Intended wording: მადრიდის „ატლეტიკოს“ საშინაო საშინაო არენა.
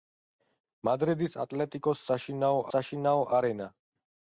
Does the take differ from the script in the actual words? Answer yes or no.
no